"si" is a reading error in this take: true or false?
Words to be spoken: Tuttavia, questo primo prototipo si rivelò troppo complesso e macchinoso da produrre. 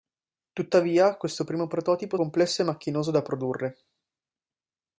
true